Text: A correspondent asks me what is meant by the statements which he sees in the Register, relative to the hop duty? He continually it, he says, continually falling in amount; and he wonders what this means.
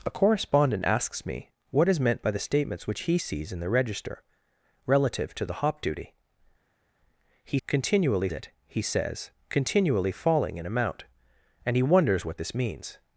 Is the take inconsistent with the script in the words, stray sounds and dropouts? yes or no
no